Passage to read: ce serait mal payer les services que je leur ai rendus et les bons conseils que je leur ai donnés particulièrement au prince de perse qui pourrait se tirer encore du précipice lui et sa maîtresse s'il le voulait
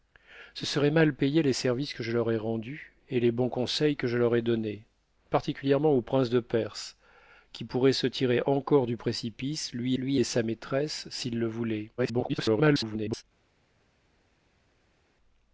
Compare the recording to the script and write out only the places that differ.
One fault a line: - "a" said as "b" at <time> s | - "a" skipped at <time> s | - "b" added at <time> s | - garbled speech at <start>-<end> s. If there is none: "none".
- "lui" added at 10.0 s
- garbled speech at 12.0-13.2 s